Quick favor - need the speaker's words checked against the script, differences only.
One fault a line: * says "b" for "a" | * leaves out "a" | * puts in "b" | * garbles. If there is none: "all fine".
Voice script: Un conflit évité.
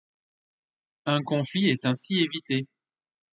* puts in "est ainsi"